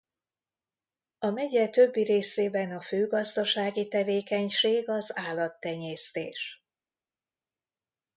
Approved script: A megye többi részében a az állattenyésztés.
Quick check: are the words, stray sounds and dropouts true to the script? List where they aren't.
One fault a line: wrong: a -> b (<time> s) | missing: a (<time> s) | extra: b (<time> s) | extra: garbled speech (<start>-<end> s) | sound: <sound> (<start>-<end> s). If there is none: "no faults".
extra: fő gazdasági tevékenység (2.8 s)